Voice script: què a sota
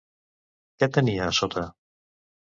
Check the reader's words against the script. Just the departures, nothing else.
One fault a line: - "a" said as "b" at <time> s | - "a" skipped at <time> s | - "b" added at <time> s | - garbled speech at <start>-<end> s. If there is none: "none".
- "tenia" added at 0.9 s